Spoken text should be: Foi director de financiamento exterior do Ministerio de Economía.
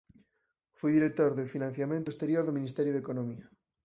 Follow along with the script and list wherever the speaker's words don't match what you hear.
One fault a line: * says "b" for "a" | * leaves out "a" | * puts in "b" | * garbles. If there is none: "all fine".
all fine